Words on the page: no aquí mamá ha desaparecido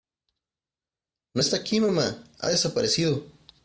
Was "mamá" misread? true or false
false